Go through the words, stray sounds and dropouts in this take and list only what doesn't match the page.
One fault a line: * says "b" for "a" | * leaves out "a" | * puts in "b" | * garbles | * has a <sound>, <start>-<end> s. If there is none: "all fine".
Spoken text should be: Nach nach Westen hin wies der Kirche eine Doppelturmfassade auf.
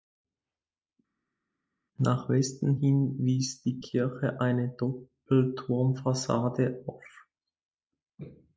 * leaves out "nach"
* says "die" for "der"